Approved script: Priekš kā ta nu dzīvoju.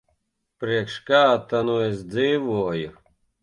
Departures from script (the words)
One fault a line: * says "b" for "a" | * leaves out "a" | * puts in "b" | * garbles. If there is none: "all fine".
* puts in "es"